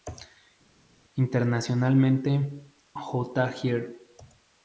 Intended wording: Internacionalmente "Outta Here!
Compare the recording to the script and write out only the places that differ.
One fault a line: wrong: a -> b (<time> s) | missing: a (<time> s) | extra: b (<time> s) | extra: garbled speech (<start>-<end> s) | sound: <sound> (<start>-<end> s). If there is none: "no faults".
no faults